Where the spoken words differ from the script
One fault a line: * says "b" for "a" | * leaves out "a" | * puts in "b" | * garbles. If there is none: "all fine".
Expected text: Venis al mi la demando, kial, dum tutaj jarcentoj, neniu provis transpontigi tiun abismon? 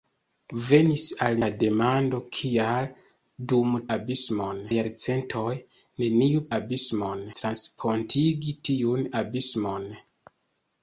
* leaves out "mi"
* says "abismon" for "tutaj"
* says "abismon" for "provis"